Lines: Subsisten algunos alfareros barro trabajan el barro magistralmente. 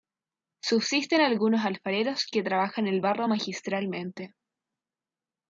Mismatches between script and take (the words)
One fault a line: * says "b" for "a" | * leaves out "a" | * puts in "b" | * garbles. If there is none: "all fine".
* says "que" for "barro"